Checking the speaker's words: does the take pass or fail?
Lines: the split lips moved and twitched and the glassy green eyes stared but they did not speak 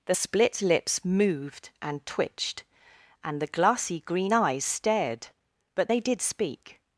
fail